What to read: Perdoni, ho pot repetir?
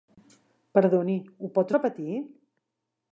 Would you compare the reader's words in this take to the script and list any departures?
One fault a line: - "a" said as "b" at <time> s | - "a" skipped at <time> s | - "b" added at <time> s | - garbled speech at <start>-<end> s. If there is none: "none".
none